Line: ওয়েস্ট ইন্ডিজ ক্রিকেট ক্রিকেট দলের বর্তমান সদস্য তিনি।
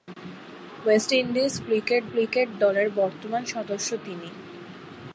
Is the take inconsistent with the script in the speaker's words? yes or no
no